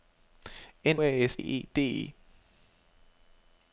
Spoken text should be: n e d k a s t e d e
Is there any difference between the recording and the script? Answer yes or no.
yes